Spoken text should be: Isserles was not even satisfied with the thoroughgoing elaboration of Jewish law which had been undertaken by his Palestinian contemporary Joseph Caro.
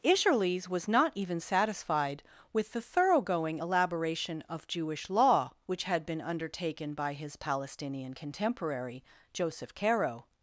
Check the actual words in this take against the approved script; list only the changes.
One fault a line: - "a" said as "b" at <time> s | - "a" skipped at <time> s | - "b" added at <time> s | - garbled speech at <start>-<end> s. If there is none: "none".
none